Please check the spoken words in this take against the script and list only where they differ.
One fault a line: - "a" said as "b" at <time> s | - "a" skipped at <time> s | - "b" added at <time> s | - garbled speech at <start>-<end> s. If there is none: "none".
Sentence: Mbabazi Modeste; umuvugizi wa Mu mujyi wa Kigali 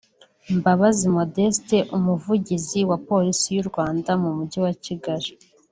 - "Polisi y'u Rwanda" added at 3.1 s